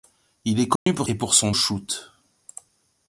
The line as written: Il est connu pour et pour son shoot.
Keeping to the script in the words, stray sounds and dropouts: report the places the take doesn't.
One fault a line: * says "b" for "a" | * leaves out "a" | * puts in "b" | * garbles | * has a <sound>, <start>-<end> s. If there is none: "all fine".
* has a dropout, 0.8-0.9 s